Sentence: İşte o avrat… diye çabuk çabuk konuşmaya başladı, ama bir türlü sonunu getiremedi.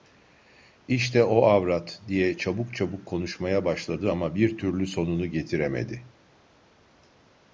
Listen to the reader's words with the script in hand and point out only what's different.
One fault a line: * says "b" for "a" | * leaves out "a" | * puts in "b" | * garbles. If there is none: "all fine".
all fine